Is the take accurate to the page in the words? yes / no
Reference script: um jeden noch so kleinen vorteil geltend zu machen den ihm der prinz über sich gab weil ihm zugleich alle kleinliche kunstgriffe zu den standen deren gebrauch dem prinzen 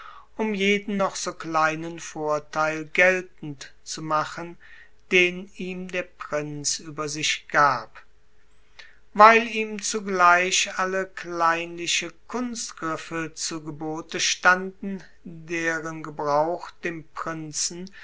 no